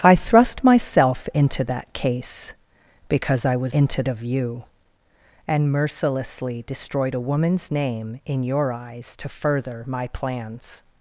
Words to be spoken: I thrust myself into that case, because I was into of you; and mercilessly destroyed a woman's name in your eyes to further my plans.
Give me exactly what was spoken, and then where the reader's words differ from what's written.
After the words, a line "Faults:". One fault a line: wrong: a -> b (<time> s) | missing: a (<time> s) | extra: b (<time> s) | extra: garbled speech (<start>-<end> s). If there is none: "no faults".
I thrust myself into that case, because I was into of you; and mercilessly destroyed a woman's name in your eyes to further my plans.
Faults:
no faults